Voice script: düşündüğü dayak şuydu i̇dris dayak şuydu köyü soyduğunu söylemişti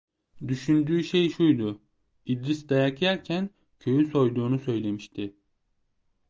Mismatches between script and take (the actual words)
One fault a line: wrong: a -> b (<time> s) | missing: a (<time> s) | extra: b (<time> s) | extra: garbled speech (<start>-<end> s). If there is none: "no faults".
wrong: dayak -> şey (1.0 s)
wrong: şuydu -> yerken (3.0 s)